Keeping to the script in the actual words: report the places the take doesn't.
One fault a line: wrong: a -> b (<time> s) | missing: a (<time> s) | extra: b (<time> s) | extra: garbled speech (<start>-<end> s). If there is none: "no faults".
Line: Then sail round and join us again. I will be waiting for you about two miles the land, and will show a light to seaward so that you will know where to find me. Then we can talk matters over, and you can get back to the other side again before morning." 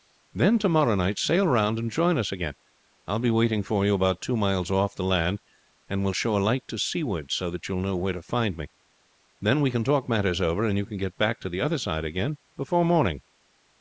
extra: to morrow night (0.6 s)
extra: off (4.7 s)